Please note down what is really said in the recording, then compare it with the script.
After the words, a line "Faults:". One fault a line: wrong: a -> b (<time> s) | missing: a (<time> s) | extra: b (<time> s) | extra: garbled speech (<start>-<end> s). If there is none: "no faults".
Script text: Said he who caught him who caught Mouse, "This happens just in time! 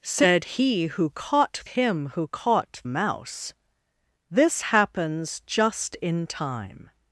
Said he who caught him who caught Mouse, "This happens just in time!
Faults:
no faults